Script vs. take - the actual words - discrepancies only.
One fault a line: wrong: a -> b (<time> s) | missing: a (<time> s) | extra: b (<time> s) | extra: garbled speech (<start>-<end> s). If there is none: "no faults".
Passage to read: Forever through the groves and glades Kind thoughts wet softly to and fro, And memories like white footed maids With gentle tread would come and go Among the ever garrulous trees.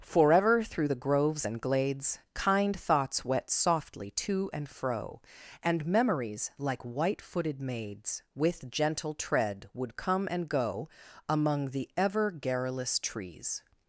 no faults